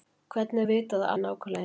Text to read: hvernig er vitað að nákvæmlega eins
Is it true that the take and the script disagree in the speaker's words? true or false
false